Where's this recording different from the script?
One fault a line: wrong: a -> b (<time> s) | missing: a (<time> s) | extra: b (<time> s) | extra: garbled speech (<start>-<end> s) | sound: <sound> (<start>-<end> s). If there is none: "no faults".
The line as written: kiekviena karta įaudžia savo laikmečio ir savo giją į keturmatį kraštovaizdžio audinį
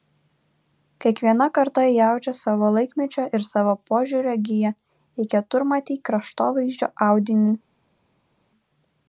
extra: požiūrio (3.9 s)